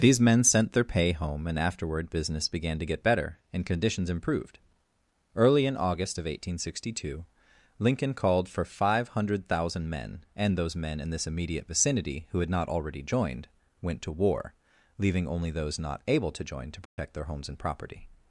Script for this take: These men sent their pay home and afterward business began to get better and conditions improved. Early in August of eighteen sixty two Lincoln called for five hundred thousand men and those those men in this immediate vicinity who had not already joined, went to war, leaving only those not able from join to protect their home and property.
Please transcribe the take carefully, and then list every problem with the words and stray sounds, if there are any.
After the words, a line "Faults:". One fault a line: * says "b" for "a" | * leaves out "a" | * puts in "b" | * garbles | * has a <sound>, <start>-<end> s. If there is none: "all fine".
These men sent their pay home and afterward business began to get better and conditions improved. Early in August of eighteen sixty two Lincoln called for five hundred thousand men and those men in this immediate vicinity who had not already joined, went to war, leaving only those not able to join to protect their homes and property.
Faults:
* leaves out "those"
* says "to" for "from"
* has a dropout, 16.9-17.0 s
* says "homes" for "home"